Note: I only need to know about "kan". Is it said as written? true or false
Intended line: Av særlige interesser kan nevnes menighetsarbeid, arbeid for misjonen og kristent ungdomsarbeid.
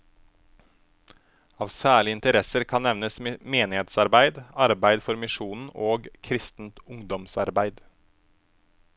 true